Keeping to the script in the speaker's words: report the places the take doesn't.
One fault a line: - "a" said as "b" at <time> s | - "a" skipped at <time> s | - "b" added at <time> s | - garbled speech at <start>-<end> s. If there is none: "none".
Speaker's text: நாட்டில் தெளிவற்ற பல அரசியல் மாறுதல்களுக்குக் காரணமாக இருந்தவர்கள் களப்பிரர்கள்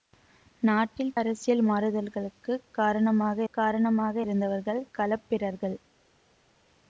- "தெளிவற்ற பல" skipped at 1.1 s
- "காரணமாக" added at 3.5 s